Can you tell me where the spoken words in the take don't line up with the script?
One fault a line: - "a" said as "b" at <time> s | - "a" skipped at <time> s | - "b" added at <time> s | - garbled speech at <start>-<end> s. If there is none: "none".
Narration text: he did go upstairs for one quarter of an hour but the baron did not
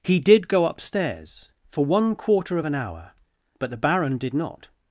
none